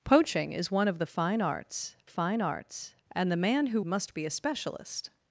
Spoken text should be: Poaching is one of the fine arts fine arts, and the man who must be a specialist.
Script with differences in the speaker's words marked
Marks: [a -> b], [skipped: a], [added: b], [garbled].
Poaching is one of the fine arts fine arts, and the man who must be a specialist.